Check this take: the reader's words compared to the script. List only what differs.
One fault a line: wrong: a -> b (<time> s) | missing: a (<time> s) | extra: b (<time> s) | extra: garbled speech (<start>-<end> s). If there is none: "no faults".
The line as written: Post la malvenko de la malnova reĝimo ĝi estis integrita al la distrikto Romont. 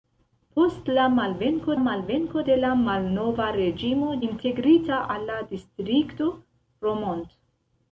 extra: malvenko (1.8 s)
missing: ĝi estis (4.1 s)